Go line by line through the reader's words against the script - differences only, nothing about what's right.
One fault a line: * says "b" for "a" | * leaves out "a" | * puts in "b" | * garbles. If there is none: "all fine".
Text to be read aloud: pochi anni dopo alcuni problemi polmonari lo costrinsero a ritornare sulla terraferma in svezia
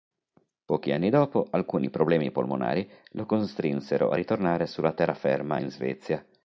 all fine